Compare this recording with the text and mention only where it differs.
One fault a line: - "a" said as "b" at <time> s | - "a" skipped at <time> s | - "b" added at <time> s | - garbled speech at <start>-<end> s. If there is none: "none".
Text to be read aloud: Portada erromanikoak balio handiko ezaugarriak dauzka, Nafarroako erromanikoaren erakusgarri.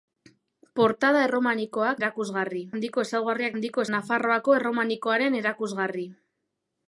- "balio" said as "erakusgarri" at 2.0 s
- "dauzka" said as "handiko" at 3.5 s